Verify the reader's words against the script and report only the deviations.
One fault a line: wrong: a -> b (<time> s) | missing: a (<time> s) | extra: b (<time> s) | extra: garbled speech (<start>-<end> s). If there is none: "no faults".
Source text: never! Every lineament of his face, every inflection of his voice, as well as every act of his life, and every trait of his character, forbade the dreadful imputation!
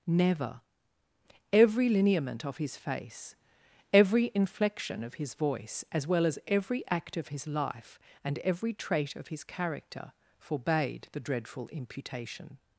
no faults